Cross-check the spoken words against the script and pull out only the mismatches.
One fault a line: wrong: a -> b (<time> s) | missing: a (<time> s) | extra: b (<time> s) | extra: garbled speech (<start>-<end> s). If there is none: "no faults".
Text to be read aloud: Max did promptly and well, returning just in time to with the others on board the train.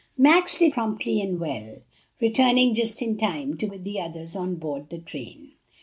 no faults